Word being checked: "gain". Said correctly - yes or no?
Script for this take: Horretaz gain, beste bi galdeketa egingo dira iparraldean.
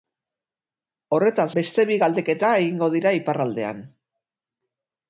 no